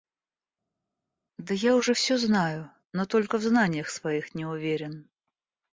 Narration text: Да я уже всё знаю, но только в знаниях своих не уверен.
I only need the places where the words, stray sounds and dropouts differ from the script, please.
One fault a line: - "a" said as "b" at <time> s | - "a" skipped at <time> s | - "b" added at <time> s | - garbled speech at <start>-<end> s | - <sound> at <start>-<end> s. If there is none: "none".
none